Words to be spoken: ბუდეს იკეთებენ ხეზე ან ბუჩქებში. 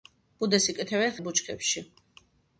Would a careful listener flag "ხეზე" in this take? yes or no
yes